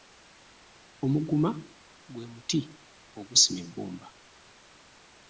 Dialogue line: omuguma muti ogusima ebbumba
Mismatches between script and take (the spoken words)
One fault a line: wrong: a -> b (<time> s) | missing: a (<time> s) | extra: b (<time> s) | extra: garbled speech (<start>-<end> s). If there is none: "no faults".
extra: gwe (2.1 s)